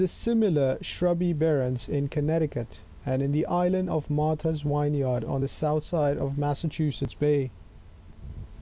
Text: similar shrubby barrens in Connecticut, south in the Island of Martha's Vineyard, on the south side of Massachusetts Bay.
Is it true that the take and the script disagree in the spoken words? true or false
true